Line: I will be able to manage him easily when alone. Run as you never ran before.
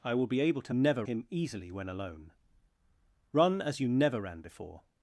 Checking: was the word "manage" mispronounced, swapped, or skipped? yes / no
yes